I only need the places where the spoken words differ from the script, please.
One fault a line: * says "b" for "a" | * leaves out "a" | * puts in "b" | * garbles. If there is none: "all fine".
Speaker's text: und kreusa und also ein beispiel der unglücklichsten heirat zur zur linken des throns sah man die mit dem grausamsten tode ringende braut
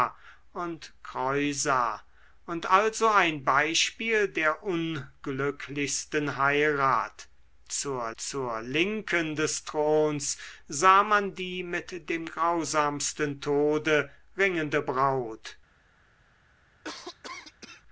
all fine